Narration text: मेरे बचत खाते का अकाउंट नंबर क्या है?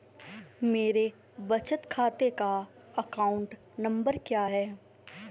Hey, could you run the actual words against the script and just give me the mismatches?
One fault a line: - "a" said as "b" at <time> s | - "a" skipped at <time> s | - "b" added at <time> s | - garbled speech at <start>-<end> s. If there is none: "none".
none